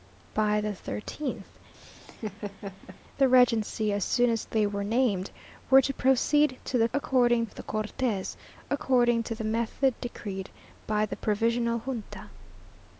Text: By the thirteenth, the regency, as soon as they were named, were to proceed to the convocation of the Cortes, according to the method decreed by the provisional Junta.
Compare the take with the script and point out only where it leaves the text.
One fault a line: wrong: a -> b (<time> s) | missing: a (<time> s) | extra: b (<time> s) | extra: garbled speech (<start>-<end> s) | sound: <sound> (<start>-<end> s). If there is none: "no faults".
sound: laugh (1.7-3.0 s)
wrong: convocation -> according (6.9 s)